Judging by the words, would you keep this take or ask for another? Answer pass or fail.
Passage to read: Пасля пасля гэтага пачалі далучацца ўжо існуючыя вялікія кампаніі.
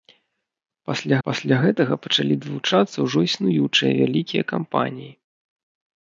pass